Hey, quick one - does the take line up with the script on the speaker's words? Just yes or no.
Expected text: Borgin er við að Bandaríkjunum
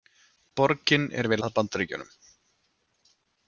yes